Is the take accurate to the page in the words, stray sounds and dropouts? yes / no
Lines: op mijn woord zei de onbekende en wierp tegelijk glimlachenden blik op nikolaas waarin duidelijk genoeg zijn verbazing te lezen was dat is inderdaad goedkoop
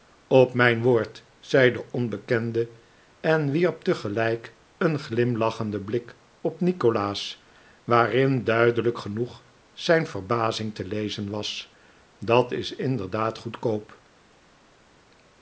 no